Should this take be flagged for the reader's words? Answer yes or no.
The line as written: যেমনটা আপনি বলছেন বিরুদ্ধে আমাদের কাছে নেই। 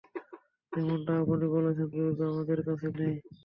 no